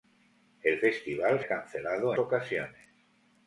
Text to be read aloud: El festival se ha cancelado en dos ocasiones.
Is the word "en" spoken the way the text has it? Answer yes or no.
no